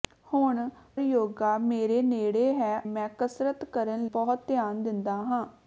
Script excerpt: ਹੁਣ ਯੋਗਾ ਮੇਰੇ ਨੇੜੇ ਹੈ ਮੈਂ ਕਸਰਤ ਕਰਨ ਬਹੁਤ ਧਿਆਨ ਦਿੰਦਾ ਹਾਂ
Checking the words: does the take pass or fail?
pass